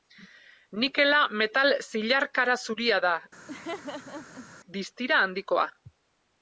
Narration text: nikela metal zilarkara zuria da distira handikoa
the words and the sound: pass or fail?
fail